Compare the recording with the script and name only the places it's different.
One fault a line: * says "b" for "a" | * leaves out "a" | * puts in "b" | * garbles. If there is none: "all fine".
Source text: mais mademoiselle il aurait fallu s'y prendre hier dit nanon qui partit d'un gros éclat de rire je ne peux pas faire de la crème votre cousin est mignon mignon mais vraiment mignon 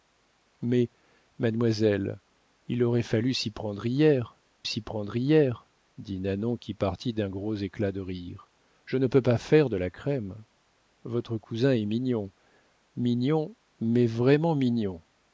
* puts in "s'y prendre hier"